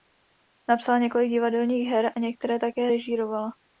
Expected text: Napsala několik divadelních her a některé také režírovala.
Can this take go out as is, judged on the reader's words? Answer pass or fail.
pass